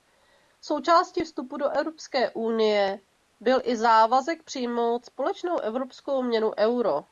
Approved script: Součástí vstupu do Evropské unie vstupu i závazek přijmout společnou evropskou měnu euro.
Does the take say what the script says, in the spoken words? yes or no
no